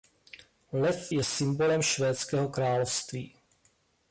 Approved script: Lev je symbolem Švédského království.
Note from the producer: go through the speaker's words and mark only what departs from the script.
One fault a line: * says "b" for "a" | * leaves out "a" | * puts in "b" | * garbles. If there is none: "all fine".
all fine